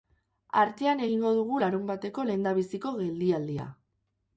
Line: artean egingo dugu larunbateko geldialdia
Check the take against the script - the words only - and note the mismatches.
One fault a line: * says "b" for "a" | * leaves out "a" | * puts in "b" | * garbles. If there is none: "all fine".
* puts in "lehendabiziko"